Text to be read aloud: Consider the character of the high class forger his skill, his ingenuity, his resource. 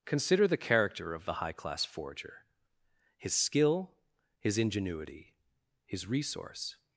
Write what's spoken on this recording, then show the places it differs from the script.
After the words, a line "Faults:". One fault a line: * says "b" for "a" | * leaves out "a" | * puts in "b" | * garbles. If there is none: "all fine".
Consider the character of the high class forger his skill, his ingenuity, his resource.
Faults:
all fine